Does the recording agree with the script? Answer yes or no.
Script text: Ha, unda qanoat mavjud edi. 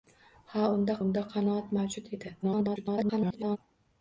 no